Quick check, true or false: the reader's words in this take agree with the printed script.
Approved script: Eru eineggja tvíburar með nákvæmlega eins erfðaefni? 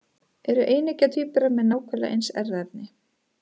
true